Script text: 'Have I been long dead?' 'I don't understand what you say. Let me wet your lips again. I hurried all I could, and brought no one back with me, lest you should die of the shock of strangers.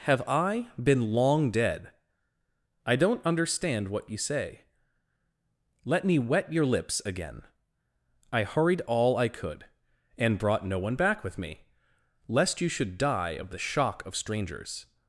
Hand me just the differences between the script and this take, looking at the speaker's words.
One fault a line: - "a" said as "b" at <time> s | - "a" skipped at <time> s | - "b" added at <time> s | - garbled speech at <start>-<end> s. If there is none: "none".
none